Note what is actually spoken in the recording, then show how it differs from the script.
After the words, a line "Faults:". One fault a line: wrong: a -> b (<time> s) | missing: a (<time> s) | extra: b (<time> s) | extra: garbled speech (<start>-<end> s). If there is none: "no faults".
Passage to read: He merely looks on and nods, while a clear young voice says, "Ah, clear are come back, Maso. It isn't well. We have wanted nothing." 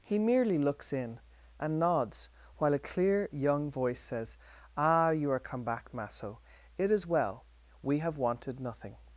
He merely looks in and nods, while a clear young voice says, "Ah, you are come back, Maso. It is well. We have wanted nothing."
Faults:
wrong: on -> in (0.9 s)
wrong: clear -> you (5.1 s)
wrong: isn't -> is (6.9 s)